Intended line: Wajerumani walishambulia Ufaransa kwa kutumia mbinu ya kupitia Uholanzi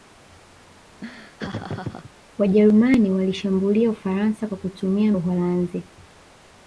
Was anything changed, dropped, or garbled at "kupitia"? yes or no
yes